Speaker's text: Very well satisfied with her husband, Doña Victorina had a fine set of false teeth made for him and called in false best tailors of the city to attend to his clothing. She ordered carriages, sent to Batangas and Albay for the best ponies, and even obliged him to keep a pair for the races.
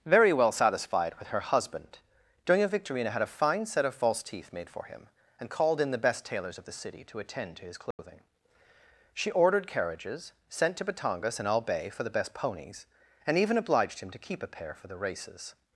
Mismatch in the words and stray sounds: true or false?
true